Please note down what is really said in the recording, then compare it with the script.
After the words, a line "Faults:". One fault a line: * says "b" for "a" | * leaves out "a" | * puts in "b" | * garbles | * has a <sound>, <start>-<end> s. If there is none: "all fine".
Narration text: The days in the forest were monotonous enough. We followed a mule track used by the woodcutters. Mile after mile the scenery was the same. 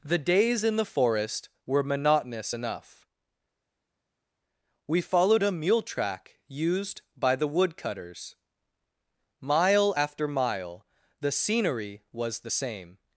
The days in the forest were monotonous enough. We followed a mule track used by the woodcutters. Mile after mile the scenery was the same.
Faults:
all fine